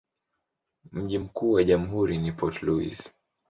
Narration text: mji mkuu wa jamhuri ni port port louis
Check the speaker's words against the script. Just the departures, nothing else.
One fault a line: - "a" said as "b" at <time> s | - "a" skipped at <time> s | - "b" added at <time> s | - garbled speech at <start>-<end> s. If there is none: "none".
- "port" skipped at 2.6 s